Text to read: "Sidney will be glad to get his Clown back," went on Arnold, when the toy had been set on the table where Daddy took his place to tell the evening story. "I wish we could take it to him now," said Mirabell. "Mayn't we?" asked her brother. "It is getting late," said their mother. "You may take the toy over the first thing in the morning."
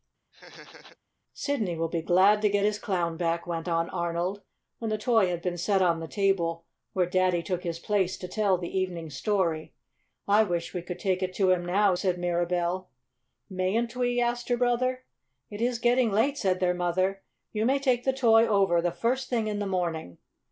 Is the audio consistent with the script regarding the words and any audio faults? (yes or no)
no